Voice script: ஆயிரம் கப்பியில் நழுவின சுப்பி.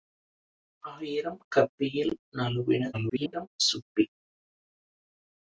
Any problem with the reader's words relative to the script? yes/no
yes